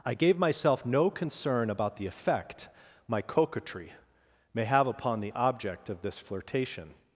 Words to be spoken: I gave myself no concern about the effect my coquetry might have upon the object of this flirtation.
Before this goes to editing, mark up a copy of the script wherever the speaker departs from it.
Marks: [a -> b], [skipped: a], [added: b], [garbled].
I gave myself no concern about the effect my coquetry [might -> may] have upon the object of this flirtation.